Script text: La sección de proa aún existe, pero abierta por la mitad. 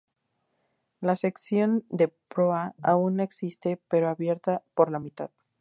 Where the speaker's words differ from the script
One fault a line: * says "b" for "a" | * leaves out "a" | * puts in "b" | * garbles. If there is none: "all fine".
all fine